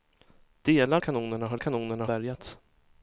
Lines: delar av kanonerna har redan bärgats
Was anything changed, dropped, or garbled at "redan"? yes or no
yes